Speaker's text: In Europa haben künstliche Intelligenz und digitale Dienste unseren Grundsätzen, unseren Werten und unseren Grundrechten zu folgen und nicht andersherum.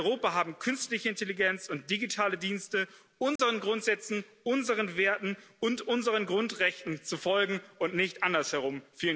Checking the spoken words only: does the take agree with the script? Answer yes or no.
yes